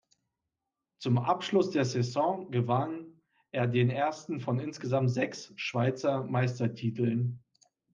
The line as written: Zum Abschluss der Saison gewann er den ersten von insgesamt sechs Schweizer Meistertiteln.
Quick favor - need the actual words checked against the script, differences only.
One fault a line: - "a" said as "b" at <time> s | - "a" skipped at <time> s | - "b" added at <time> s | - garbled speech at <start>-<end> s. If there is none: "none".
none